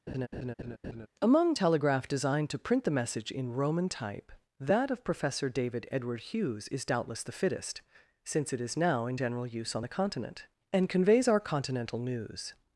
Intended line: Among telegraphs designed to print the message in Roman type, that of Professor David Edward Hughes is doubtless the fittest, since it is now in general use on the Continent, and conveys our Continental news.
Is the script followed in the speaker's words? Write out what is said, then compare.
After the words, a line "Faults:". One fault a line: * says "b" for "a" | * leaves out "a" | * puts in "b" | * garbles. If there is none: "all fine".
Among telegraph designed to print the message in Roman type, that of Professor David Edward Hughes is doubtless the fittest, since it is now in general use on the Continent, and conveys our Continental news.
Faults:
* says "telegraph" for "telegraphs"